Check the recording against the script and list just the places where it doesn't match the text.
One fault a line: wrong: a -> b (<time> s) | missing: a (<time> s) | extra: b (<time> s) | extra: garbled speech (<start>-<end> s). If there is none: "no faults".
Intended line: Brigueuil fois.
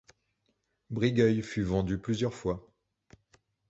extra: fut vendu plusieurs (1.4 s)